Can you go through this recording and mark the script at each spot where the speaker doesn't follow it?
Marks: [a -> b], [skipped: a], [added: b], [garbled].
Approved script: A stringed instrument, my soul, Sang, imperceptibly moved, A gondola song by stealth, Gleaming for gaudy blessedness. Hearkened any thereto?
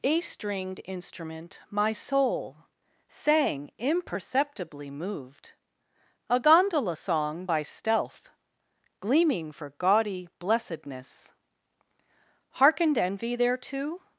A stringed instrument, my soul, Sang, imperceptibly moved, A gondola song by stealth, Gleaming for gaudy blessedness. Hearkened [any -> envy] thereto?